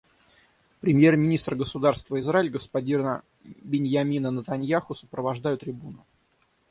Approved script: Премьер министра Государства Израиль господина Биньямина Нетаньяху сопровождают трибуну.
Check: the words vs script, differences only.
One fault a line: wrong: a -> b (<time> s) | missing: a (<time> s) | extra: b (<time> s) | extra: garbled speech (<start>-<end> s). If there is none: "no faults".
no faults